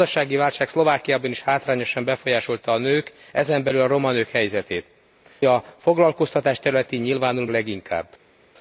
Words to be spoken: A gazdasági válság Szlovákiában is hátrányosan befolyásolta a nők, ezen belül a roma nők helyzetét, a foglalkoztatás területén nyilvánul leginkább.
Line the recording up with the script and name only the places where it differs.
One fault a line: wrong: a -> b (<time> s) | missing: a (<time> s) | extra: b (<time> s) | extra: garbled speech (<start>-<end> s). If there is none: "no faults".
no faults